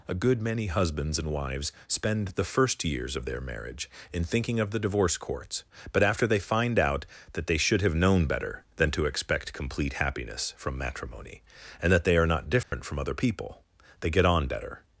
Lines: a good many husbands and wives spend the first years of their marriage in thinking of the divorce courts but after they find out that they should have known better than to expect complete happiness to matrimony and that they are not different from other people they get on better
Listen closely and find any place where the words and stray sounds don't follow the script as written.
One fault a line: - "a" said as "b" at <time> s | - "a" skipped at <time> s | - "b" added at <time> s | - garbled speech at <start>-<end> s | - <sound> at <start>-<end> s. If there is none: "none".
- "to" said as "from" at 10.6 s
- dropout at 12.6-12.7 s